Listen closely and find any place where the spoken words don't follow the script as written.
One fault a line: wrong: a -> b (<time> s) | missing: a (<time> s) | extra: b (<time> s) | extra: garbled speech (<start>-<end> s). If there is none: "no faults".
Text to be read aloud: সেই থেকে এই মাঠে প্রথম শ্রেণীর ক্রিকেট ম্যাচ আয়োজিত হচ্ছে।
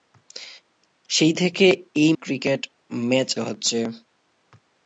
missing: মাঠে প্রথম শ্রেণীর (2.1 s)
missing: আয়োজিত (3.3 s)